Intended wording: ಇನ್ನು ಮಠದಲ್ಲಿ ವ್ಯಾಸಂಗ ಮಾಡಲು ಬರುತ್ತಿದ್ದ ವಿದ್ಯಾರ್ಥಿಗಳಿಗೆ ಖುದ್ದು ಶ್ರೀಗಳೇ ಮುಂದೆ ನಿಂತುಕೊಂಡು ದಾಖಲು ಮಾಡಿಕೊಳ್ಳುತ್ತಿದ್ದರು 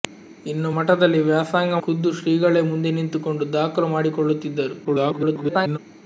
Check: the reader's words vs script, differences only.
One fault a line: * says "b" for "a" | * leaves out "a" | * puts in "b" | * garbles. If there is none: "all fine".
* leaves out "ಮಾಡಲು ಬರುತ್ತಿದ್ದ ವಿದ್ಯಾರ್ಥಿಗಳಿಗೆ"
* garbles